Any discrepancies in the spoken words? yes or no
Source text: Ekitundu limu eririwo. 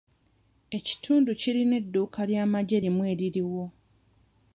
yes